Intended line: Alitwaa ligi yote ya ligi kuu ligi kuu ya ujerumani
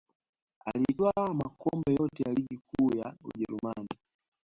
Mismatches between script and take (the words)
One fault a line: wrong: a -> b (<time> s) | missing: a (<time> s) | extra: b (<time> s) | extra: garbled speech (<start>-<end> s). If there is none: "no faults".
wrong: ligi -> makombe (1.3 s)
missing: ligi kuu (3.0 s)